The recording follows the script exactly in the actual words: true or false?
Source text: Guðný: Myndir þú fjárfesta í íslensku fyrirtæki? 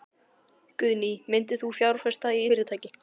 false